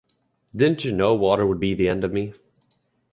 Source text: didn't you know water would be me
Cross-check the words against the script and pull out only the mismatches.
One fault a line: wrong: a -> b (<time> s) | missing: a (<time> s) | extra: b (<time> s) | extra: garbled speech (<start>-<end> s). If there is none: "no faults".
extra: the end of (1.7 s)